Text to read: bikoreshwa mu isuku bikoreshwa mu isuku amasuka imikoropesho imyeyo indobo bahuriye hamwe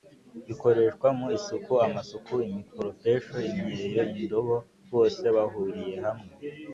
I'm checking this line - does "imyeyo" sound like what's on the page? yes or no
yes